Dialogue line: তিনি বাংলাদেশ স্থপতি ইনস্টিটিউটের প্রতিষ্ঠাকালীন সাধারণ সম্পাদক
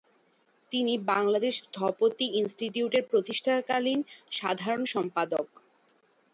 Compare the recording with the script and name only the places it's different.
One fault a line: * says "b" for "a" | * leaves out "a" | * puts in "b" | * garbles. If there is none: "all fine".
all fine